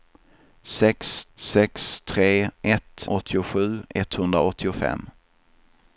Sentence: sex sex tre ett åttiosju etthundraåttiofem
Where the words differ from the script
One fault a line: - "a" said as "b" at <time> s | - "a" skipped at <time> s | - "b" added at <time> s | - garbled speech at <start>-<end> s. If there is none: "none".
none